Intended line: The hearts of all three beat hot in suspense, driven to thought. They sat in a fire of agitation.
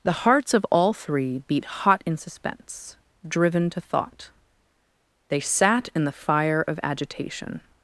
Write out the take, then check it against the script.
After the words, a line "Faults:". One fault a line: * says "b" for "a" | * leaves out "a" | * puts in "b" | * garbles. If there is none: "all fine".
The hearts of all three beat hot in suspense, driven to thought. They sat in the fire of agitation.
Faults:
* says "the" for "a"